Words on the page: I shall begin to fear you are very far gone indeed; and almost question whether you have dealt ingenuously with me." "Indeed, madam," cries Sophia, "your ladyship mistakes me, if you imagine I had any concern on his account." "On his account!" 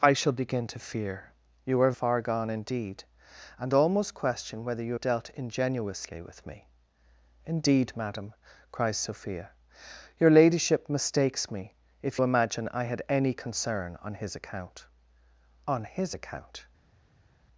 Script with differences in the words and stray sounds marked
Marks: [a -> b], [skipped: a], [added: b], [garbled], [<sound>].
I shall begin to fear you are [skipped: very] far gone indeed; and almost question whether you [skipped: have] dealt ingenuously with me." "Indeed, madam," cries Sophia, "your ladyship mistakes me, if [skipped: you] imagine I had any concern on his account." "On his account!"